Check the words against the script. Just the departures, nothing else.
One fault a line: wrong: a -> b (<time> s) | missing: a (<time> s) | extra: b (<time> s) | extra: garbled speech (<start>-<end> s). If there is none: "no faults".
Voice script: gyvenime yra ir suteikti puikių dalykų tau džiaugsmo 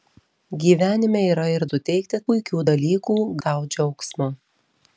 no faults